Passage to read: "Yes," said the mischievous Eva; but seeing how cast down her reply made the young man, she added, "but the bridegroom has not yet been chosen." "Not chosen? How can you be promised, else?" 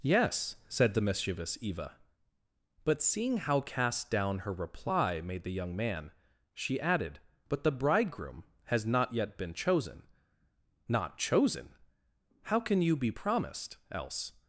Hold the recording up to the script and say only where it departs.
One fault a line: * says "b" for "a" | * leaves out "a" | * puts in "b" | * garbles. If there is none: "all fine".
all fine